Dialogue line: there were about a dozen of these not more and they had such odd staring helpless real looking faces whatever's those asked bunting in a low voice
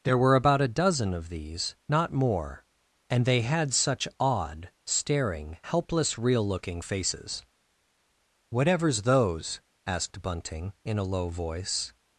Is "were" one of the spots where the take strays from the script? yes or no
no